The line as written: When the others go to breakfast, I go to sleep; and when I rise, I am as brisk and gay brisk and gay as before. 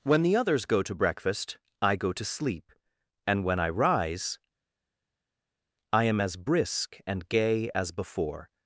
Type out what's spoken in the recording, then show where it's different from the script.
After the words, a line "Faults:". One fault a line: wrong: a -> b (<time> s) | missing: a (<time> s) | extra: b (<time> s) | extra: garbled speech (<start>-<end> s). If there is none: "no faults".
When the others go to breakfast, I go to sleep; and when I rise, I am as brisk and gay as before.
Faults:
missing: brisk and gay (7.7 s)